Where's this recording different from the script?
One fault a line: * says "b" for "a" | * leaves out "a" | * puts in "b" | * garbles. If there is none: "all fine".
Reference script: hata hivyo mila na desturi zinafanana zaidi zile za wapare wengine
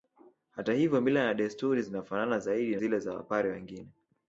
all fine